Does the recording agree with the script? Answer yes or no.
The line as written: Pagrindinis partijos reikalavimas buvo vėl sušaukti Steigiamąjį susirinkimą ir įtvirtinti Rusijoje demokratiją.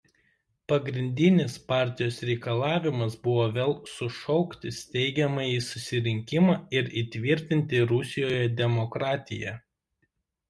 yes